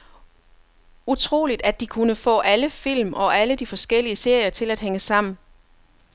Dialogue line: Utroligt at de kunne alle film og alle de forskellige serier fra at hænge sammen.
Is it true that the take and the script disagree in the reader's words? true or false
true